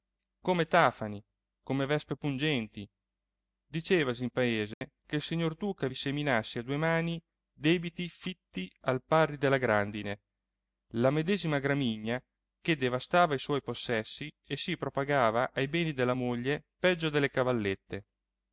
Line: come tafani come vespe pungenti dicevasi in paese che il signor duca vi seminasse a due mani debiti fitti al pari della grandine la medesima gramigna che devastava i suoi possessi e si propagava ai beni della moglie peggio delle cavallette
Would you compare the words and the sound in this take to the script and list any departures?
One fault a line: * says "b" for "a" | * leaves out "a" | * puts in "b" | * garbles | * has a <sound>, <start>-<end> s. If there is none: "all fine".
* has a dropout, 4.7-4.8 s